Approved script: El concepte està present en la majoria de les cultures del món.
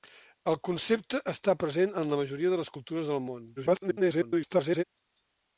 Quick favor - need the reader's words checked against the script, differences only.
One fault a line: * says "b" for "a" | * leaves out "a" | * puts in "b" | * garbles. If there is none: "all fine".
* garbles